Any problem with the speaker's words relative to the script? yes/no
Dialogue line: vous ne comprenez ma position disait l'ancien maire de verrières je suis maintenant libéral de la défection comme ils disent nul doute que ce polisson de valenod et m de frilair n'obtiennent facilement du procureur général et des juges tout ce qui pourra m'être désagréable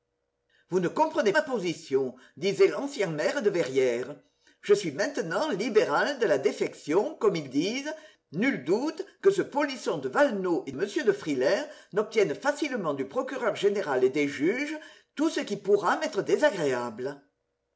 no